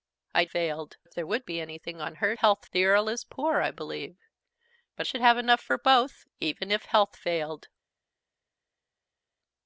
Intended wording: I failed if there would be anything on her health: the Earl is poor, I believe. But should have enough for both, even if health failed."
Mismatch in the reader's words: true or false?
false